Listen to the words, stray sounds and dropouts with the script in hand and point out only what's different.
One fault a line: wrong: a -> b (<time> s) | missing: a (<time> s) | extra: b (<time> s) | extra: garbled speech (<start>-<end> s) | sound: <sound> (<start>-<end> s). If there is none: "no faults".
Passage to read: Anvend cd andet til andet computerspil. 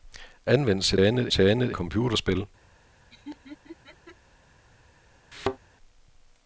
sound: laugh (3.1-4.2 s)
sound: thud (5.3-5.6 s)